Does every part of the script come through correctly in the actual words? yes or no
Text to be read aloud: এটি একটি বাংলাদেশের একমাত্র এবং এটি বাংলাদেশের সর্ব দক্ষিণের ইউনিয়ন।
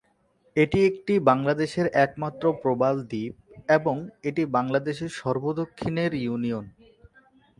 no